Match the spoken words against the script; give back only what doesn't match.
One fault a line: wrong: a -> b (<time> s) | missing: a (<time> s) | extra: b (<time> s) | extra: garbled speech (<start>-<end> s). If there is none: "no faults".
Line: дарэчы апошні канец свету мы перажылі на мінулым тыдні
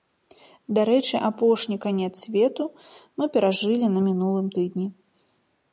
no faults